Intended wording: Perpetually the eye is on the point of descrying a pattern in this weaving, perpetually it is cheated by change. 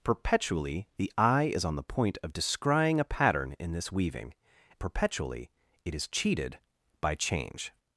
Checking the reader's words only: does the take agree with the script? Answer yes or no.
yes